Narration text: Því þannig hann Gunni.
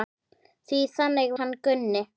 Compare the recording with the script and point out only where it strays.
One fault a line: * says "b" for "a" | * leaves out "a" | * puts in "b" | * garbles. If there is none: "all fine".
all fine